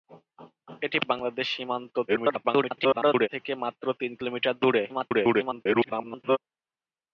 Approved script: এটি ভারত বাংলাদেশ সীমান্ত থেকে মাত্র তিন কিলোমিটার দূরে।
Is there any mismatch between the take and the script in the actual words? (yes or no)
yes